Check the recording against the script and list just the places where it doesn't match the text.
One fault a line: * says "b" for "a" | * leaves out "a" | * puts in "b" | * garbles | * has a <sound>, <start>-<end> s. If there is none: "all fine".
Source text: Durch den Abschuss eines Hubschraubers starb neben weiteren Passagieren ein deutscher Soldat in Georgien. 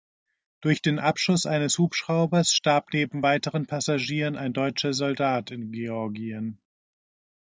all fine